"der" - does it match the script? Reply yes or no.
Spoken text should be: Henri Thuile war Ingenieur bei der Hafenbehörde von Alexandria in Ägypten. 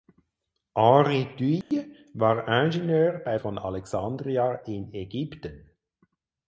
no